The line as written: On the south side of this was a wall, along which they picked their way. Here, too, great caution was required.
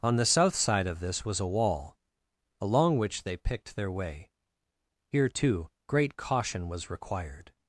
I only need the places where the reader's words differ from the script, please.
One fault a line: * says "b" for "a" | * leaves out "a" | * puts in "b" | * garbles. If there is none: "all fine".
all fine